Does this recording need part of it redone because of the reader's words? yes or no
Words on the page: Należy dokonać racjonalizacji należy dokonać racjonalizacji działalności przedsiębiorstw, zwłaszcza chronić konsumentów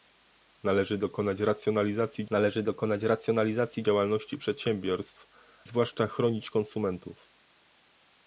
no